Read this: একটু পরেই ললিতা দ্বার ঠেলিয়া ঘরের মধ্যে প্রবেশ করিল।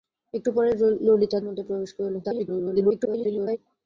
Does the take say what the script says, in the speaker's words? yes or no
no